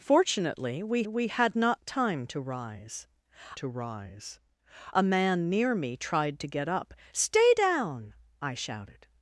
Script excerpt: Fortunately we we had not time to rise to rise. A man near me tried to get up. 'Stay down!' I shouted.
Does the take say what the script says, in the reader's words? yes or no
yes